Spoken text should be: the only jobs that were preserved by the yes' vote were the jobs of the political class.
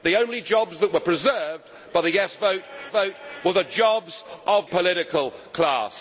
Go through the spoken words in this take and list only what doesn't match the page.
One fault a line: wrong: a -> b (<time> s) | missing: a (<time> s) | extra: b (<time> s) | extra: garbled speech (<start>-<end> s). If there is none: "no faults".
extra: vote (2.9 s)
missing: the (4.7 s)